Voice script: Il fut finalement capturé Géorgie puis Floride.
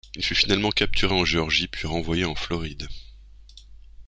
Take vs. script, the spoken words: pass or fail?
fail